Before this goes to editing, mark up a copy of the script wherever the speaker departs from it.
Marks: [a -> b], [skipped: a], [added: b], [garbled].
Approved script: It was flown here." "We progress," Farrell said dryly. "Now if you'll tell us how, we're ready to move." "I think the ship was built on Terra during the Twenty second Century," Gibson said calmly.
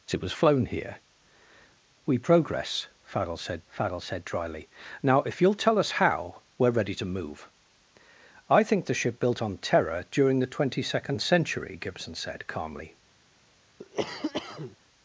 It was flown here." "We progress," Farrell said [added: Farrell said] dryly. "Now if you'll tell us how, we're ready to move." "I think the ship [skipped: was] built on Terra during the Twenty second Century," Gibson said calmly.